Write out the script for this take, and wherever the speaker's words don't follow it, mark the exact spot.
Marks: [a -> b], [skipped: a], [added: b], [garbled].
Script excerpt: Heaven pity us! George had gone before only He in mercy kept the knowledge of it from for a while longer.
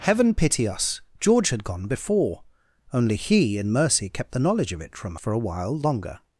Heaven pity us! George had gone before only He in mercy kept the knowledge of it from for a while longer.